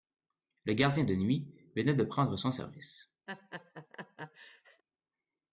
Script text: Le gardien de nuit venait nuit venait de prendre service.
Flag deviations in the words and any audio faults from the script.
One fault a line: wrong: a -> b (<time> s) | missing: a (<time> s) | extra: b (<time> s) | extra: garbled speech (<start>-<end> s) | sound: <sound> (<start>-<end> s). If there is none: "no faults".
missing: nuit venait (1.9 s)
extra: son (2.4 s)
sound: laugh (3.3-4.8 s)